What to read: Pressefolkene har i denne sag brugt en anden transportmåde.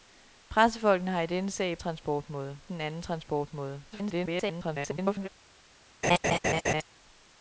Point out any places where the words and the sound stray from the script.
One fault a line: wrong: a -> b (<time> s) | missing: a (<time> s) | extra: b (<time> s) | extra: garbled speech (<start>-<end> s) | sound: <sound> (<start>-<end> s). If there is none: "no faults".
wrong: brugt -> transportmåde (1.8 s)
extra: garbled speech (3.9-5.3 s)
sound: laugh (6.0-6.8 s)